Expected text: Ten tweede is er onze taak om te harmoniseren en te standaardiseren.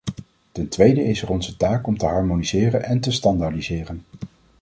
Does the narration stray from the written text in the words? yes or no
no